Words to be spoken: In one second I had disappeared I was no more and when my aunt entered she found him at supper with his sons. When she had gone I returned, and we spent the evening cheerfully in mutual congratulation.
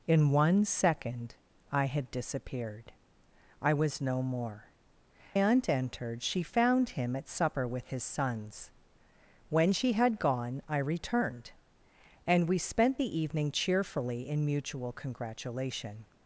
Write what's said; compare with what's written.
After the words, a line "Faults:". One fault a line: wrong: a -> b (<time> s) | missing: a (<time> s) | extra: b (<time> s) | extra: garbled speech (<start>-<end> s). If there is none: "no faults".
In one second I had disappeared I was no more aunt entered she found him at supper with his sons. When she had gone I returned, and we spent the evening cheerfully in mutual congratulation.
Faults:
missing: and when my (4.7 s)